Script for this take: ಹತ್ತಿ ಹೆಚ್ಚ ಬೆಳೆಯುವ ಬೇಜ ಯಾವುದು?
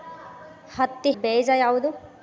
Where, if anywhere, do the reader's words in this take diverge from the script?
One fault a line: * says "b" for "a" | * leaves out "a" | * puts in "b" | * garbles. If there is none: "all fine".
* leaves out "ಹೆಚ್ಚ ಬೆಳೆಯುವ"